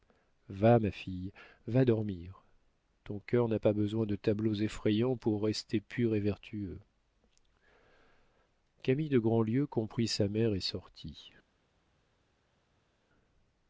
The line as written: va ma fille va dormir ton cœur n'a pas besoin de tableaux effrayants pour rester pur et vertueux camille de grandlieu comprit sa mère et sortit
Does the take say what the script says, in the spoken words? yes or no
yes